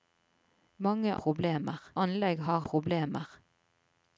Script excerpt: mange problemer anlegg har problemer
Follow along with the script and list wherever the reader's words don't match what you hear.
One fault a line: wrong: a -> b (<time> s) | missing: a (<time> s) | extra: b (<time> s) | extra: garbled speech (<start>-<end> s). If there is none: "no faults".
no faults